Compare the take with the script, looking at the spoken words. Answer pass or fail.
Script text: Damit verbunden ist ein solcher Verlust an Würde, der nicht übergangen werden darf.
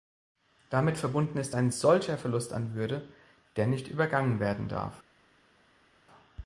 pass